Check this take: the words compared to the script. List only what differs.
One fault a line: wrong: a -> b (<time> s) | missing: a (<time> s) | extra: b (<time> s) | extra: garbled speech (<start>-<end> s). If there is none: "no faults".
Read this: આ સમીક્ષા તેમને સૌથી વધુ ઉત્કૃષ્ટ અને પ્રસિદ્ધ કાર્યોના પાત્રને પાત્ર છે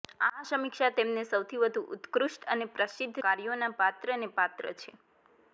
no faults